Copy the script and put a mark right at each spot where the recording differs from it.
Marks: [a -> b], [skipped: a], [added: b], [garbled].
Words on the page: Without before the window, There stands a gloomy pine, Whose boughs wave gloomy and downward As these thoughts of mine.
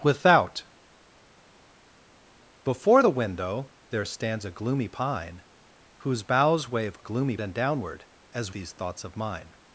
Without before the window, There stands a gloomy pine, Whose boughs wave gloomy and downward As these thoughts of mine.